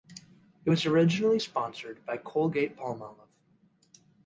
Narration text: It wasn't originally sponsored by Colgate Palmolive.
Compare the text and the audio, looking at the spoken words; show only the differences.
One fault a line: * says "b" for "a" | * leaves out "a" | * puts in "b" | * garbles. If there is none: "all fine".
* says "was" for "wasn't"